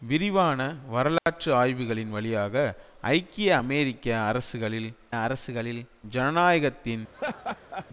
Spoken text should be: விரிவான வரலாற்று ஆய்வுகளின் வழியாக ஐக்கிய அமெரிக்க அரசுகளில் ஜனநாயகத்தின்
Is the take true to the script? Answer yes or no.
no